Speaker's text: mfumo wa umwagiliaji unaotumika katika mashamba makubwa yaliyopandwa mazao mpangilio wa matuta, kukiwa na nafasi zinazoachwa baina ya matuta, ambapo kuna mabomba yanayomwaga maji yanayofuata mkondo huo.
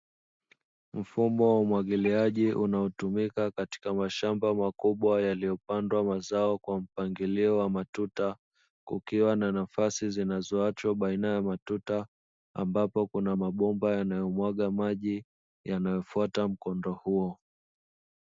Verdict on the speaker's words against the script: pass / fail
fail